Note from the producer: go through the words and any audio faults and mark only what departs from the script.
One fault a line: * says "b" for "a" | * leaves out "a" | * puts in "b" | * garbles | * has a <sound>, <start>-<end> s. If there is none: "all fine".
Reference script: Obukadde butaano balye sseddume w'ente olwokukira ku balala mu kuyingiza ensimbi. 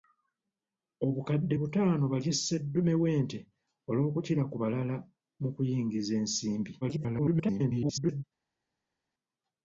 * garbles